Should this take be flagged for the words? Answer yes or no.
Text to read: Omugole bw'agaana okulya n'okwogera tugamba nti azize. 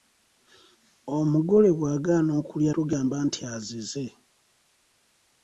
yes